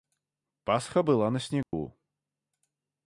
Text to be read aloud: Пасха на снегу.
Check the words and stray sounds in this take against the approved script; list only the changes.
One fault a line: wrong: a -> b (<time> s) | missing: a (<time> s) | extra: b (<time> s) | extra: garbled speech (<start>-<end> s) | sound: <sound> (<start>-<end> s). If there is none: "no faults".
extra: была (1.0 s)
sound: dropout (1.6-1.7 s)